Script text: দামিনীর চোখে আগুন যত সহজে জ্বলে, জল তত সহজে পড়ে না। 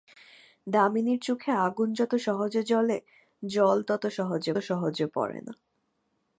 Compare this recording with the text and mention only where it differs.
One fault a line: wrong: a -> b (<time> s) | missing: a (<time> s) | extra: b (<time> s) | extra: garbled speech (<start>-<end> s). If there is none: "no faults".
extra: সহজে (4.6 s)